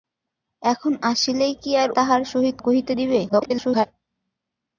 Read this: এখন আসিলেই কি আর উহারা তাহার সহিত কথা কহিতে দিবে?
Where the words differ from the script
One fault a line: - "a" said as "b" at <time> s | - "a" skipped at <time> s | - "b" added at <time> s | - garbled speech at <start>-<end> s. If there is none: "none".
- "উহারা" skipped at 1.9 s
- "কথা" skipped at 2.6 s
- garbled speech at 3.3-3.9 s